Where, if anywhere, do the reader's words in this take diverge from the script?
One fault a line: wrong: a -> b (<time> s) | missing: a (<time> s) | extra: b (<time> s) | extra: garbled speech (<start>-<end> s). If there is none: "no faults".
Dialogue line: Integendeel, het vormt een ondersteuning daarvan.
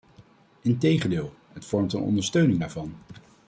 no faults